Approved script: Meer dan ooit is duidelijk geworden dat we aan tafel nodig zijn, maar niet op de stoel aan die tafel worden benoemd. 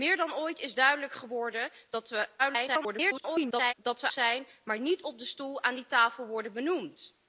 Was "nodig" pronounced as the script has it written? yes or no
no